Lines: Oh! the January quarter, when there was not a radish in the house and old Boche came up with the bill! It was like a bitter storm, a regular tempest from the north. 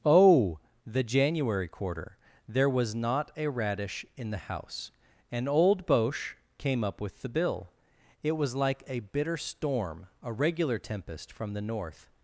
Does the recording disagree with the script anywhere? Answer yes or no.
yes